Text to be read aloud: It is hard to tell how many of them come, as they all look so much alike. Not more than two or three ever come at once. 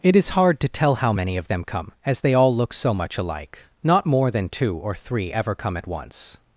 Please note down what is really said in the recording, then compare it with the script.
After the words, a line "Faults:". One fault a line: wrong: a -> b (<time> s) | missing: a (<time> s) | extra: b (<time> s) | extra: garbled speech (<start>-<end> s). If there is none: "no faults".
It is hard to tell how many of them come, as they all look so much alike. Not more than two or three ever come at once.
Faults:
no faults